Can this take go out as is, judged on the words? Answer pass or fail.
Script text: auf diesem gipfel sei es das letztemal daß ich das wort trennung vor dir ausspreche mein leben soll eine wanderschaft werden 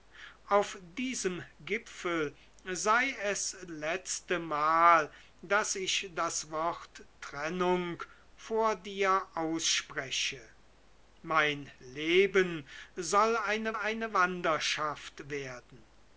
fail